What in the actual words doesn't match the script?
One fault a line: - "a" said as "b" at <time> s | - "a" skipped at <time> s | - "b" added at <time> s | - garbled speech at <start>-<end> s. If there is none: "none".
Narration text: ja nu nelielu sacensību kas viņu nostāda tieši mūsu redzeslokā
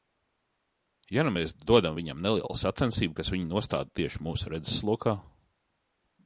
- "mēs dodam viņam" added at 1.3 s